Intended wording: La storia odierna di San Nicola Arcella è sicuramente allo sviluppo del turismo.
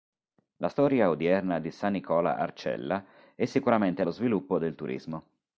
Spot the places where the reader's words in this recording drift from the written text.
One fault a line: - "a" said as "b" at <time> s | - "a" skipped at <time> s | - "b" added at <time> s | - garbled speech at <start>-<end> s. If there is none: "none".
none